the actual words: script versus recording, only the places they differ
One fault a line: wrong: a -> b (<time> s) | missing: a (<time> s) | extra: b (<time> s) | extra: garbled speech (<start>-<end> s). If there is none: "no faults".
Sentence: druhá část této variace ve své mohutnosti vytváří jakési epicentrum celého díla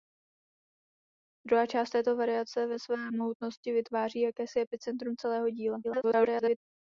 extra: garbled speech (5.8-6.6 s)